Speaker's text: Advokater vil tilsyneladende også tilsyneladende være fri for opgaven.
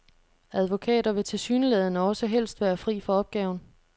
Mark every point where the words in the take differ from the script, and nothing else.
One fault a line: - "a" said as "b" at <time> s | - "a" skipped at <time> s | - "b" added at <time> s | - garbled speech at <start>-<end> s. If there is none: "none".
- "tilsyneladende" said as "helst" at 2.3 s